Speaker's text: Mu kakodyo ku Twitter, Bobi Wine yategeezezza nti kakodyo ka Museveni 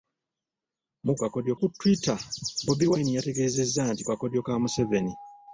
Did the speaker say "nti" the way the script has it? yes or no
yes